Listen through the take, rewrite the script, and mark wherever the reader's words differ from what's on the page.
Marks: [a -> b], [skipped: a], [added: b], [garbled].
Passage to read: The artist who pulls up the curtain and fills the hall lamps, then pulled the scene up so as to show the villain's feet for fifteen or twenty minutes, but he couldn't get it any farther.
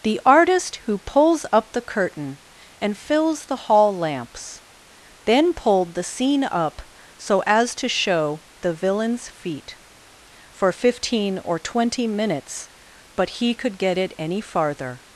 The artist who pulls up the curtain and fills the hall lamps, then pulled the scene up so as to show the villain's feet for fifteen or twenty minutes, but he [couldn't -> could] get it any farther.